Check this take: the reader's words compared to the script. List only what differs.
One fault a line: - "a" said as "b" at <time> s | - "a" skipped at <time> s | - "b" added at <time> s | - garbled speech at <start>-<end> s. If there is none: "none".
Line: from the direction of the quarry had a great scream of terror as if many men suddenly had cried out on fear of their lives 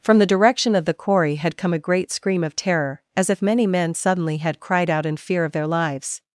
- "come" added at 1.6 s
- "on" said as "in" at 5.0 s